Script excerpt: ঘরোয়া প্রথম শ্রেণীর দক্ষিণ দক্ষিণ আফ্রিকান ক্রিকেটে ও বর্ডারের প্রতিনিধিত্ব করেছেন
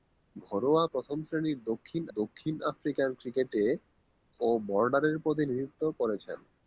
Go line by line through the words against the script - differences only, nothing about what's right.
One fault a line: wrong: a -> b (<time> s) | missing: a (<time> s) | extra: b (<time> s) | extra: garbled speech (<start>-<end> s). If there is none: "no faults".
no faults